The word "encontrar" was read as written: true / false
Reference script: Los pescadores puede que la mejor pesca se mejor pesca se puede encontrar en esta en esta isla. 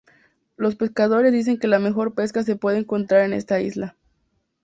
true